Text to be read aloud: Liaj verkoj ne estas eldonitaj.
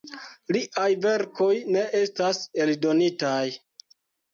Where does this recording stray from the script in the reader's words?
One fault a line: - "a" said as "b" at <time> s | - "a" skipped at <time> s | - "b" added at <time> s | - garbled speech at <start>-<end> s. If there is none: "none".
none